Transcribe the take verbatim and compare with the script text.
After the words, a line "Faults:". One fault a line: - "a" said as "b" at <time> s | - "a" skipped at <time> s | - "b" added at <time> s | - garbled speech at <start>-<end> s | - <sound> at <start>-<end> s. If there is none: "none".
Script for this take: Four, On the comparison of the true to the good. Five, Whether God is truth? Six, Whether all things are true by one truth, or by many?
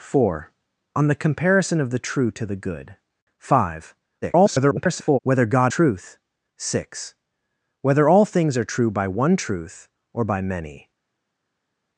Four, On the comparison of the true to the good. Five, [garbled] Whether God truth? Six, Whether all things are true by one truth, or by many?
Faults:
- garbled speech at 4.2-5.2 s
- "is" skipped at 5.7 s